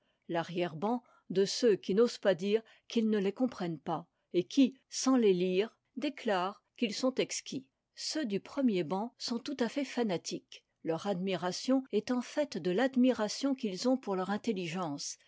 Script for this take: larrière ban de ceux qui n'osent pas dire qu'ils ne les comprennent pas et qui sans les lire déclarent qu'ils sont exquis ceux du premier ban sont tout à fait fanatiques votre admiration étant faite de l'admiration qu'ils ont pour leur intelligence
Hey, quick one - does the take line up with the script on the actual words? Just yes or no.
no